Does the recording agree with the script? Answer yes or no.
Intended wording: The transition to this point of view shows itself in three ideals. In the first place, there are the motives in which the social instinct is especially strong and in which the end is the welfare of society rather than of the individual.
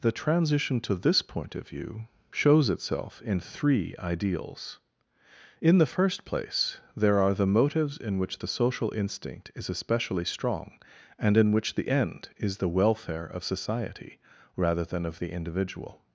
yes